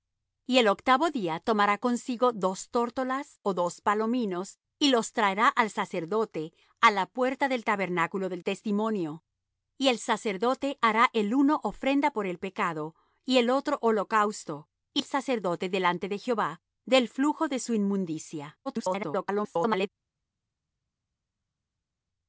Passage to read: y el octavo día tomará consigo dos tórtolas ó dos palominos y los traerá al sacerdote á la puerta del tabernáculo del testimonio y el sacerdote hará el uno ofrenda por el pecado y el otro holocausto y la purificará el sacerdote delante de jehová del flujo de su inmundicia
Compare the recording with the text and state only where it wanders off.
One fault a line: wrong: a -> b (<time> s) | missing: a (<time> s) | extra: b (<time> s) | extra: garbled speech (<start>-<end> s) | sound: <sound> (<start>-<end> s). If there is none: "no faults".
missing: la purificará (15.0 s)
extra: garbled speech (18.7-19.9 s)